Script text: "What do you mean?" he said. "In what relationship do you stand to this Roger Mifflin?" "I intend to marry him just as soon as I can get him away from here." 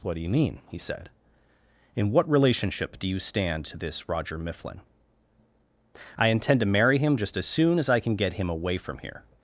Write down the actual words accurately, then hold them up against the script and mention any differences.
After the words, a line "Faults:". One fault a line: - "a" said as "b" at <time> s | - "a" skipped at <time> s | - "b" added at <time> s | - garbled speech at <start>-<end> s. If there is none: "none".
"What do you mean?" he said. "In what relationship do you stand to this Roger Mifflin?" "I intend to marry him just as soon as I can get him away from here."
Faults:
none